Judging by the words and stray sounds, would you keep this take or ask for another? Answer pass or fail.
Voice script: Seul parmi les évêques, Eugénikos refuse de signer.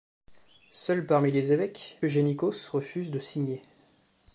pass